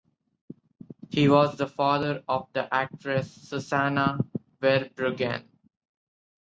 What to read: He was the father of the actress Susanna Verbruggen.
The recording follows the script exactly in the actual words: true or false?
true